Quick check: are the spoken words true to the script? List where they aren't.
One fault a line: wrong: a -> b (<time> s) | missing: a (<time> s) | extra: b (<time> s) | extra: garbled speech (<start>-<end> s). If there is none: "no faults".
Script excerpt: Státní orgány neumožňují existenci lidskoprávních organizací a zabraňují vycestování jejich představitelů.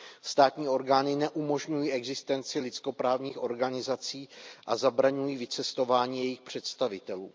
no faults